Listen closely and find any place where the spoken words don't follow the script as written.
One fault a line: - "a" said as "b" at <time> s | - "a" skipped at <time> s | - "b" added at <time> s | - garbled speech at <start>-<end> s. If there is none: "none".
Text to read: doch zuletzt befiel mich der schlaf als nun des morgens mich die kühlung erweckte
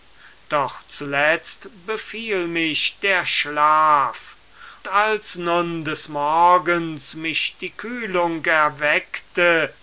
none